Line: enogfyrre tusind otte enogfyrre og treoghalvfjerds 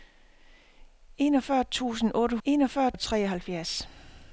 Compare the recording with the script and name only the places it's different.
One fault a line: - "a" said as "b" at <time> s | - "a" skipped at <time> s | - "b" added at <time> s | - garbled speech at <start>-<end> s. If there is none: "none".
none